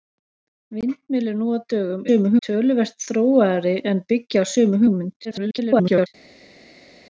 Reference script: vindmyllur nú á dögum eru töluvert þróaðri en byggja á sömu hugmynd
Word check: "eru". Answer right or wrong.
wrong